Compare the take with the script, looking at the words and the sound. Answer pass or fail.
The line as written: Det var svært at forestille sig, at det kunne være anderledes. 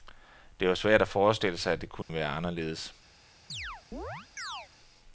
fail